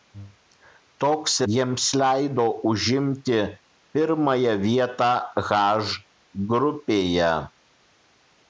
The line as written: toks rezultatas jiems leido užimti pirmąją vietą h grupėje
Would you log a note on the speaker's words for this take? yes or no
yes